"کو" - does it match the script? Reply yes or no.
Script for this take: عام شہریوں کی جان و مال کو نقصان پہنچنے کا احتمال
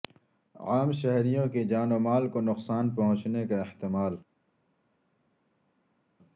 yes